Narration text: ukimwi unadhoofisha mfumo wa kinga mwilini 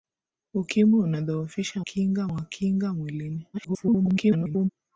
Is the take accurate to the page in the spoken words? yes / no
no